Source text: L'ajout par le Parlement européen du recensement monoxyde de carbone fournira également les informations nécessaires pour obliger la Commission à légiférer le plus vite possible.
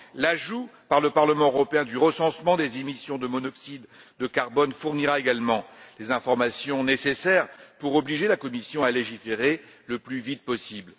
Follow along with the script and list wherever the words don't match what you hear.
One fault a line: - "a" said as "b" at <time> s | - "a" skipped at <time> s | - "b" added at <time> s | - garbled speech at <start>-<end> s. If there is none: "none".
- "des émissions de" added at 2.6 s